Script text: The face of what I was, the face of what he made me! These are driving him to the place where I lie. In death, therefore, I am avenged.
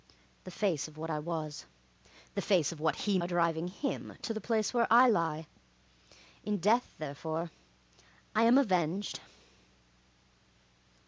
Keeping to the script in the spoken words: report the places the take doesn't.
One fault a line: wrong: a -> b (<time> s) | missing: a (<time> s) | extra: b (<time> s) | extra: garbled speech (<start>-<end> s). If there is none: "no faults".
missing: made me These (3.2 s)